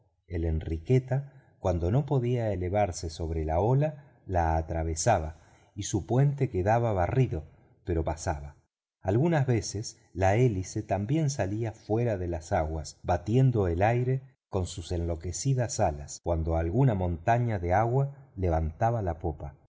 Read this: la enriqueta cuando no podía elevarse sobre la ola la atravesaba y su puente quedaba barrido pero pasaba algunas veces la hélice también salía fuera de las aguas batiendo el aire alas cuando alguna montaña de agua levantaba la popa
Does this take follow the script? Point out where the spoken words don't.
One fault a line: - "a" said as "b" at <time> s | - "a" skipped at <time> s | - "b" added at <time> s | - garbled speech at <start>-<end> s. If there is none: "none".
- "con sus enloquecidas" added at 14.5 s